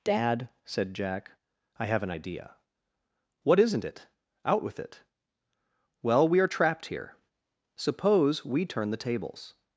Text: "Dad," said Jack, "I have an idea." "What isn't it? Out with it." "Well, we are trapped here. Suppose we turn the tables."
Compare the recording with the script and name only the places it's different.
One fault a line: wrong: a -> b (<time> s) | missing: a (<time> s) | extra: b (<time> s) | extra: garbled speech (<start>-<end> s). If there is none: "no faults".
no faults